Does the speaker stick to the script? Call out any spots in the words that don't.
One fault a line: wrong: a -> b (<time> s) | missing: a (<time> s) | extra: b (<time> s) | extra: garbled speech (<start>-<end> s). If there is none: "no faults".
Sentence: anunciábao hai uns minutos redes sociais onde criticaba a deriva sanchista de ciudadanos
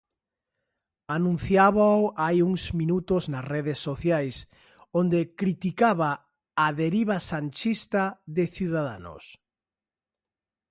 extra: nas (3.3 s)